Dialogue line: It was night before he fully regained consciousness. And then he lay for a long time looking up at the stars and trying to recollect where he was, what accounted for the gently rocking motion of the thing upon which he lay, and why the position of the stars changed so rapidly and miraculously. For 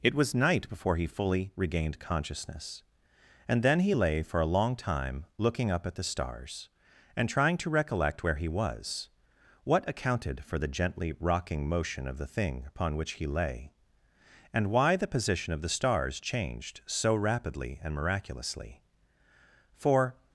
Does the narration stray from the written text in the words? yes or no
no